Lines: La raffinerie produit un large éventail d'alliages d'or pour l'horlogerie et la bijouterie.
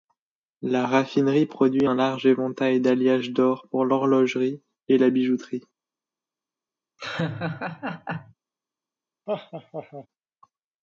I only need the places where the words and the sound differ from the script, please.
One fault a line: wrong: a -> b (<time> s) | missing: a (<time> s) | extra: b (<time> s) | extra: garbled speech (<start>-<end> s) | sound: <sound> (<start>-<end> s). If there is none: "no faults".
sound: laugh (7.0-8.3 s)
sound: laugh (9.3-10.1 s)